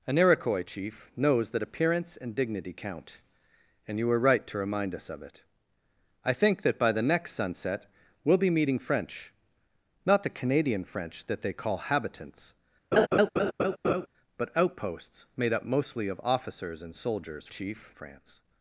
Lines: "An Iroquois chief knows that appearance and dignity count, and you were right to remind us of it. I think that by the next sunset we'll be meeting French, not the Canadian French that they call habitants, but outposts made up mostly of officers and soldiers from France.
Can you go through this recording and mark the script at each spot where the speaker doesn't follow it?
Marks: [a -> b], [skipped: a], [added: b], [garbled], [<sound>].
"An Iroquois chief knows that appearance and dignity count, and you were right to remind us of it. I think that by the next sunset we'll be meeting French, not the Canadian French that they call habitants, [laugh] but outposts made up mostly of officers and soldiers [from -> chief] France.